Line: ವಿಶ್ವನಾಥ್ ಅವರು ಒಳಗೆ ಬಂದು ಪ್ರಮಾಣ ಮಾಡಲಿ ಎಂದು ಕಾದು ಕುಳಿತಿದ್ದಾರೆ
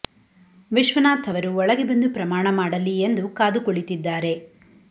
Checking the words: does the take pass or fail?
pass